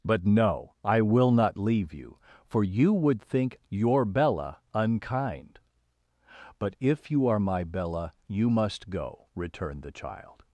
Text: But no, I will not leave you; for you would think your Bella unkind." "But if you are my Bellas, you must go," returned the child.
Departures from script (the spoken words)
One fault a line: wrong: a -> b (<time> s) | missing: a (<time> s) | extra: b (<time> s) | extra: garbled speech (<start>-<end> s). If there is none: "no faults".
wrong: Bellas -> Bella (7.6 s)